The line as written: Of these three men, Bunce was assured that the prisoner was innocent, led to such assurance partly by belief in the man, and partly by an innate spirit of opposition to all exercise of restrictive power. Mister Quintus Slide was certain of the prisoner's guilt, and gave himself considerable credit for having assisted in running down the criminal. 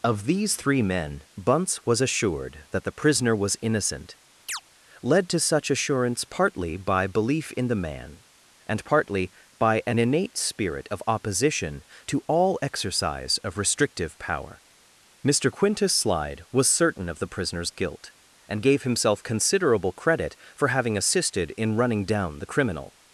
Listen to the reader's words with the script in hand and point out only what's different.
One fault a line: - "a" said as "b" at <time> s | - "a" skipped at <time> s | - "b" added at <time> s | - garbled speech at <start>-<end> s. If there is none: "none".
none